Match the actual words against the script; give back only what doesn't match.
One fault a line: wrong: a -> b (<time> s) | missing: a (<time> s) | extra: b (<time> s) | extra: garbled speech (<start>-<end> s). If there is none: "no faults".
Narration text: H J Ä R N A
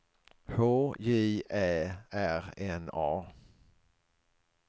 no faults